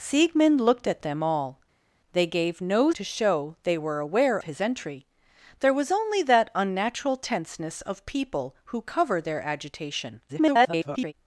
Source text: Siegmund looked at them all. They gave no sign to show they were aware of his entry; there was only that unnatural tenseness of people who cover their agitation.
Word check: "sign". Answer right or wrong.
wrong